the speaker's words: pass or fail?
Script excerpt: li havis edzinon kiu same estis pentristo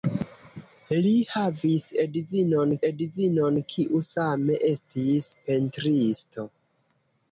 fail